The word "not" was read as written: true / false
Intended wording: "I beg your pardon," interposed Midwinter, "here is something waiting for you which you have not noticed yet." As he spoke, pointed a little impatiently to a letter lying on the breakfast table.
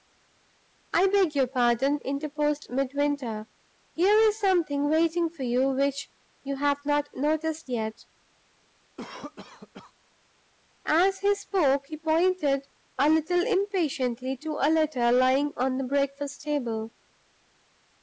true